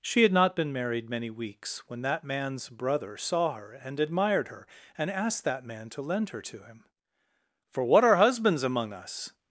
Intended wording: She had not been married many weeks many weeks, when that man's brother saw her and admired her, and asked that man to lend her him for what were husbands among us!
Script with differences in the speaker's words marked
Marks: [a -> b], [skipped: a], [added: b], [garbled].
She had not been married many weeks [skipped: many weeks,] when that man's brother saw her and admired her, and asked that man to lend her [added: to] him for what [were -> are] husbands among us!